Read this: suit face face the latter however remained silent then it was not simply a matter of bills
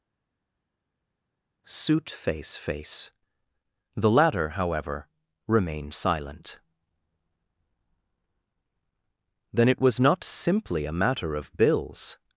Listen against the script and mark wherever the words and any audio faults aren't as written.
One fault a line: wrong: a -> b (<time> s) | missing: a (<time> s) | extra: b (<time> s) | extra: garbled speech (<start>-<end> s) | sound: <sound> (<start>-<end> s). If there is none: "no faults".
no faults